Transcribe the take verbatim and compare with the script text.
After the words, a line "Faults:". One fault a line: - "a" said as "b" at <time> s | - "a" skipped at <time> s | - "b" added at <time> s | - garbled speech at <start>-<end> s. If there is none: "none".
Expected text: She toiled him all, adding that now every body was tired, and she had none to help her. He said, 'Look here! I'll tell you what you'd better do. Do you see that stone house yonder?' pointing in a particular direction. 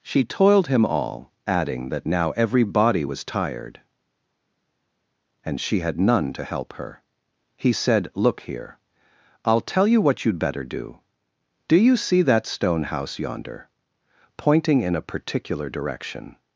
She toiled him all, adding that now every body was tired, and she had none to help her. He said, 'Look here! I'll tell you what you'd better do. Do you see that stone house yonder?' pointing in a particular direction.
Faults:
none